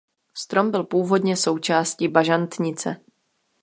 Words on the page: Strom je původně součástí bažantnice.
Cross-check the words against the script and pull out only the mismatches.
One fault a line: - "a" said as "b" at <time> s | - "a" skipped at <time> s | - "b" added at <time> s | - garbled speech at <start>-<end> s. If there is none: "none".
- "je" said as "byl" at 0.7 s